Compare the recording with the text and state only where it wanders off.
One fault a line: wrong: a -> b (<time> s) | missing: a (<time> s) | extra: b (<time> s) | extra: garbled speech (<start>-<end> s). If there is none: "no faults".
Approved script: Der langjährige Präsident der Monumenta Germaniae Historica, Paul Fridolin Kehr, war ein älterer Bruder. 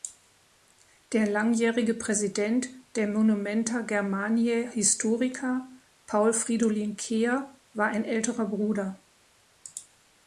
no faults